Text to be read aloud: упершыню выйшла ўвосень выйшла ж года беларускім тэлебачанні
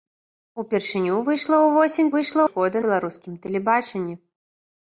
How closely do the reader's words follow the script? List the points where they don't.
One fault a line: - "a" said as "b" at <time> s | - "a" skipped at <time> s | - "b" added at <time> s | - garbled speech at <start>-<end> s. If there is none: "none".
none